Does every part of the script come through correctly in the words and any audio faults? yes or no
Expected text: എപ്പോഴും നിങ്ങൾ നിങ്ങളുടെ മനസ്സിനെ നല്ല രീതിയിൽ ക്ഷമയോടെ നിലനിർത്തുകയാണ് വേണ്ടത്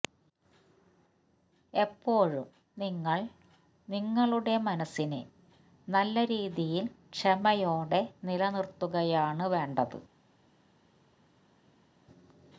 yes